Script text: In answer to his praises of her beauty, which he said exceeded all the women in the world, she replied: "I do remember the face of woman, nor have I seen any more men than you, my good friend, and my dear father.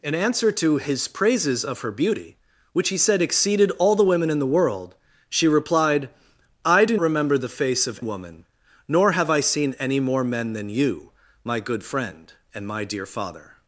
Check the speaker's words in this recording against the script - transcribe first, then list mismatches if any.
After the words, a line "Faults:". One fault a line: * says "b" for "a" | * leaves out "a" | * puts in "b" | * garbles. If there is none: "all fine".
In answer to his praises of her beauty, which he said exceeded all the women in the world, she replied: "I do remember the face of woman, nor have I seen any more men than you, my good friend, and my dear father.
Faults:
all fine